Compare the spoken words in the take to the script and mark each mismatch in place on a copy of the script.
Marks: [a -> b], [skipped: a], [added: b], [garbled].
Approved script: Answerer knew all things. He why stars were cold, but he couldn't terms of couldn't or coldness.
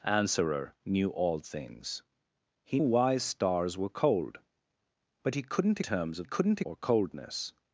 Answerer knew all things. He why stars were cold, but he couldn't terms of couldn't or coldness.